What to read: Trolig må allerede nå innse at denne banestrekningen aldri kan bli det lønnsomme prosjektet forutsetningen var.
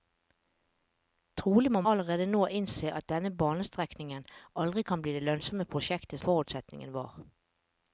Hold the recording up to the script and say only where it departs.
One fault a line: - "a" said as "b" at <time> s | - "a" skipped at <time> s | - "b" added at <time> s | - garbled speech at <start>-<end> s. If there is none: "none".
none